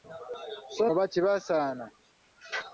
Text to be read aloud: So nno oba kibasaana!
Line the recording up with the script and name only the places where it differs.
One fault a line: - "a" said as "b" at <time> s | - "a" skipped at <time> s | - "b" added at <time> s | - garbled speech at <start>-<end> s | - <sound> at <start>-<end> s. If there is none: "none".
- "nno" skipped at 0.8 s